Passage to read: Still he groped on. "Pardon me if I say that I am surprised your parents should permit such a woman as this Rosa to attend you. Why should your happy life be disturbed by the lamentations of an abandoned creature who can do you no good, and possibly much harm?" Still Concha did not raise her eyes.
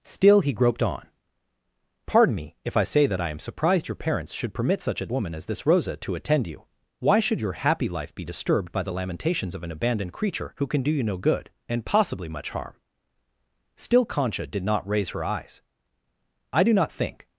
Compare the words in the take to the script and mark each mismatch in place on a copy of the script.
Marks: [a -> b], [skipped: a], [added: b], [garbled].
Still he groped on. "Pardon me if I say that I am surprised your parents should permit such a woman as this Rosa to attend you. Why should your happy life be disturbed by the lamentations of an abandoned creature who can do you no good, and possibly much harm?" Still Concha did not raise her eyes. [added: I do not think]